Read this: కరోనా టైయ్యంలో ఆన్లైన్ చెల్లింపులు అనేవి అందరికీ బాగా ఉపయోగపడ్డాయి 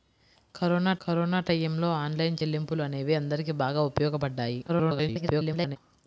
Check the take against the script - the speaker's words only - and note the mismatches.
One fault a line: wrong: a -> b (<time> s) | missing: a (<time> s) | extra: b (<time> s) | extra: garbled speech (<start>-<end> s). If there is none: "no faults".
extra: కరోనా (1.0 s)
extra: garbled speech (4.7-5.8 s)